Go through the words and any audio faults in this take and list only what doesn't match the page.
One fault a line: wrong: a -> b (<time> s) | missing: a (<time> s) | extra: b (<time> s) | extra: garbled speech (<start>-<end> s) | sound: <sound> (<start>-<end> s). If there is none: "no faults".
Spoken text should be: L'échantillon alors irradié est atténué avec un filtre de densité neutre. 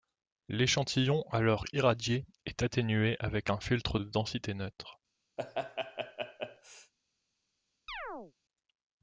sound: laugh (5.4-6.9 s)
sound: chirp (7.9-8.3 s)